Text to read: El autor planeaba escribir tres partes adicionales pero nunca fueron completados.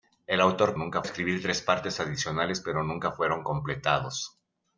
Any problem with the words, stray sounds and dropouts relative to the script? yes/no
yes